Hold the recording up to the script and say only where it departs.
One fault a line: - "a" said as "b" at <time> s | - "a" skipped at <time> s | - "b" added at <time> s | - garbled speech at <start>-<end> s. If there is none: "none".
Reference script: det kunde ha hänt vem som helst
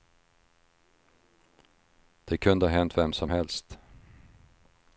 none